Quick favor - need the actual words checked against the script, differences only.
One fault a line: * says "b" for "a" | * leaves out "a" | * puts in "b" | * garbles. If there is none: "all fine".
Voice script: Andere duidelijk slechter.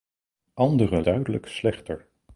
all fine